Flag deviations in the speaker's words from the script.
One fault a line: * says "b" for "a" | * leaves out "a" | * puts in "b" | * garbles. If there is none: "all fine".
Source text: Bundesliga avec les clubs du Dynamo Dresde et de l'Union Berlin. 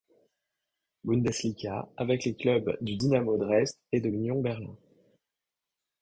all fine